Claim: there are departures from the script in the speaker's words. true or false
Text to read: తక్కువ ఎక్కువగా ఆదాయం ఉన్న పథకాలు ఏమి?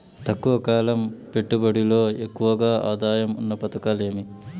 true